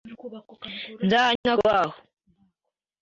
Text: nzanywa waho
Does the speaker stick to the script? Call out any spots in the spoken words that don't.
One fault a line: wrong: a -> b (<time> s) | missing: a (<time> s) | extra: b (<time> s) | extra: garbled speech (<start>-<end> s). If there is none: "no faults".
no faults